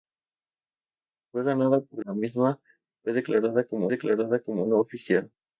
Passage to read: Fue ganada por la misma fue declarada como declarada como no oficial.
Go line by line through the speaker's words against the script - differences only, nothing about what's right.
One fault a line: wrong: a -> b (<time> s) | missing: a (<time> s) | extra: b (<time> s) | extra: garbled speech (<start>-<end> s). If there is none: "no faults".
no faults